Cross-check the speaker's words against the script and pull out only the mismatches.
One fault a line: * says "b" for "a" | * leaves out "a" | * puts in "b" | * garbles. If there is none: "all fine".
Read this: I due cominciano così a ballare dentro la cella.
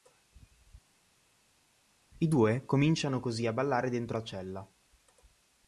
all fine